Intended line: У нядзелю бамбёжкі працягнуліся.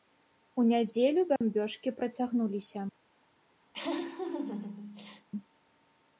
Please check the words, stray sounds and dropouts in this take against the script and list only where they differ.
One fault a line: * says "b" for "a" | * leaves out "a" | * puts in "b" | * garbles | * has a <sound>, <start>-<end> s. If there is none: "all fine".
* has a dropout, 1.4-1.4 s
* has a laugh, 3.7-5.3 s